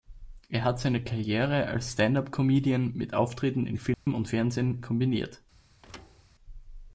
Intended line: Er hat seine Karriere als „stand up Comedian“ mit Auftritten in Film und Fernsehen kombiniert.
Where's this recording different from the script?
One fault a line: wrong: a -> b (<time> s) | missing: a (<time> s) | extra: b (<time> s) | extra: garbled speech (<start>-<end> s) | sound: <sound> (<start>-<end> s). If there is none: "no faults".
sound: dropout (3.9-4.1 s)
sound: thud (5.8-6.3 s)